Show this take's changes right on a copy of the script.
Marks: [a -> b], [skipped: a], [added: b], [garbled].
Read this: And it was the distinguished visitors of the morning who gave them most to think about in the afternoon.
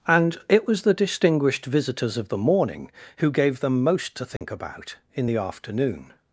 And it was the distinguished visitors of the morning who gave them most to think about in the afternoon.